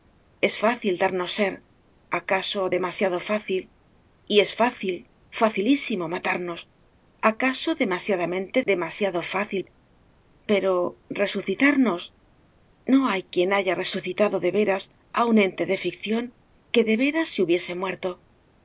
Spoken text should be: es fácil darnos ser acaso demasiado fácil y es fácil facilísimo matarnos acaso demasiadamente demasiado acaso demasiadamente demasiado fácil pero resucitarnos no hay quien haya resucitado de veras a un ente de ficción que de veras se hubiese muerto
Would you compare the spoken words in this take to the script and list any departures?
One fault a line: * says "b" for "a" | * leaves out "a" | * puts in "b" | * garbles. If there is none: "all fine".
* leaves out "acaso demasiadamente demasiado"